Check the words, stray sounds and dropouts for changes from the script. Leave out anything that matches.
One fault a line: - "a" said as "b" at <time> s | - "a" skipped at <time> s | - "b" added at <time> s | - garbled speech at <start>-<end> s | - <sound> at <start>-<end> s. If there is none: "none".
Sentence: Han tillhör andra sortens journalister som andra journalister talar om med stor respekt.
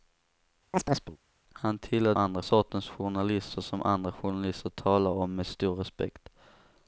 - chirp at 0.7-1.2 s